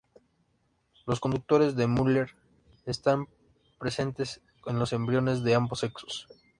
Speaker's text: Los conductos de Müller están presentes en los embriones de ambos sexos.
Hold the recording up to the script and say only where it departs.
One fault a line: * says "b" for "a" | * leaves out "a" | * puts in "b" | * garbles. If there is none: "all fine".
all fine